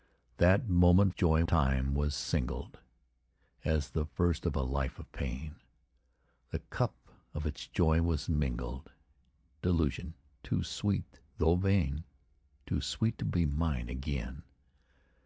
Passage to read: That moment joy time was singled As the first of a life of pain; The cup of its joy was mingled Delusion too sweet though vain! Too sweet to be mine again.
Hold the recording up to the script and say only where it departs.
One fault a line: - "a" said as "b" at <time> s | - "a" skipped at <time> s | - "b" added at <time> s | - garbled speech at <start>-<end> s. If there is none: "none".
none